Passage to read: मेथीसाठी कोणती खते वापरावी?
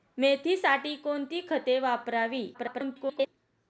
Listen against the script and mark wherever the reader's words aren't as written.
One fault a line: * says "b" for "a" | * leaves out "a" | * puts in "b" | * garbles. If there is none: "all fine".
* garbles